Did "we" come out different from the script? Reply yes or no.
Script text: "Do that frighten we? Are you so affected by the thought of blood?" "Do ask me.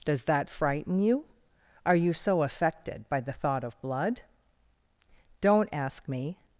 yes